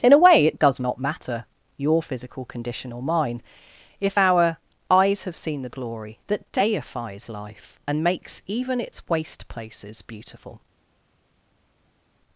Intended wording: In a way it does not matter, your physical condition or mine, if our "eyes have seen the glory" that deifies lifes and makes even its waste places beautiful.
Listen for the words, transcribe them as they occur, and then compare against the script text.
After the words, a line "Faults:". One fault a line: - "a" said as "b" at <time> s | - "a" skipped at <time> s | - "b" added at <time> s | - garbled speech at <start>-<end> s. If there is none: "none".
In a way it does not matter, your physical condition or mine, if our "eyes have seen the glory" that deifies life and makes even its waste places beautiful.
Faults:
- "lifes" said as "life" at 7.3 s